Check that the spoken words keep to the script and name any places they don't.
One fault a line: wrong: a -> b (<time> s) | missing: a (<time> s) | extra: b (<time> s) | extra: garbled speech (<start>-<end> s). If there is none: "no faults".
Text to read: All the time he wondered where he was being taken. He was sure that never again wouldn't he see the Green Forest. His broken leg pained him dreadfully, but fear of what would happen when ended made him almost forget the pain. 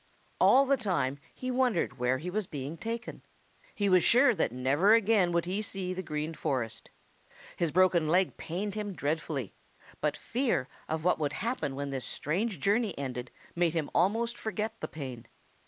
wrong: wouldn't -> would (5.3 s)
extra: this strange journey (11.9 s)